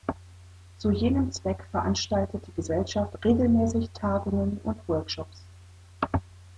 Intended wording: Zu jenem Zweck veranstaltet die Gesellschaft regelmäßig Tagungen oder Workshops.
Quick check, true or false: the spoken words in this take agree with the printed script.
false